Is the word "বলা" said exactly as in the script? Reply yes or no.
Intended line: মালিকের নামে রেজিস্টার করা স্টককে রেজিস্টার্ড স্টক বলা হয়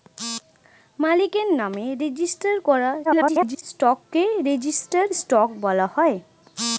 yes